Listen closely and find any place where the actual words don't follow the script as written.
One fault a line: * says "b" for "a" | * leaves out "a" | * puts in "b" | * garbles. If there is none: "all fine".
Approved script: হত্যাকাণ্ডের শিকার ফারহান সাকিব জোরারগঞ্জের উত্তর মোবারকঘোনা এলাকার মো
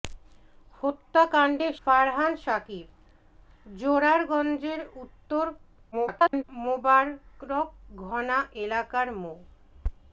* leaves out "শিকার"
* garbles